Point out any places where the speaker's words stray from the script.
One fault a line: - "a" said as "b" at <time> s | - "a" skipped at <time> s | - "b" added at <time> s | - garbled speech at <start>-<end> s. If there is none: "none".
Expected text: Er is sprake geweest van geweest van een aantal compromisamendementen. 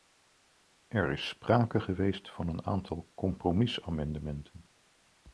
- "geweest van" skipped at 2.5 s